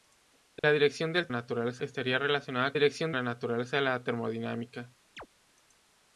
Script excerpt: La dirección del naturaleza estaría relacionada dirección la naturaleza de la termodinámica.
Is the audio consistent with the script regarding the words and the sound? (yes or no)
no